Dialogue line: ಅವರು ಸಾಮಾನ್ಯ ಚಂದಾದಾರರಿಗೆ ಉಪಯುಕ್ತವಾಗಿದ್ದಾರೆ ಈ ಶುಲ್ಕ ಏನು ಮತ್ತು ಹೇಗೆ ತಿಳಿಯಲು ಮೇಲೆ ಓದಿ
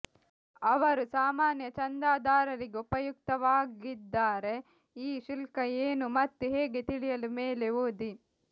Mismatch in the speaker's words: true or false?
false